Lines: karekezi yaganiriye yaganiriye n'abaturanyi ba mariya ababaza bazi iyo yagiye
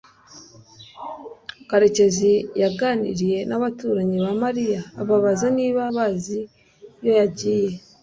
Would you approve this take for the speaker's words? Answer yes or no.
no